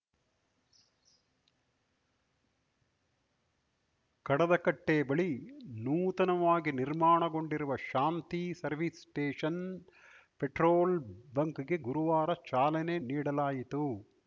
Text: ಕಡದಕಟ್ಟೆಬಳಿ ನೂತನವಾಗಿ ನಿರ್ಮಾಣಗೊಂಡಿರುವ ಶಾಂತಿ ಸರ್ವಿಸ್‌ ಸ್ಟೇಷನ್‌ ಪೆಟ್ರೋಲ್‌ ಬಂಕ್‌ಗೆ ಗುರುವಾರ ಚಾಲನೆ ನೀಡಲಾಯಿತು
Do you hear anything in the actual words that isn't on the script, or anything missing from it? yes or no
no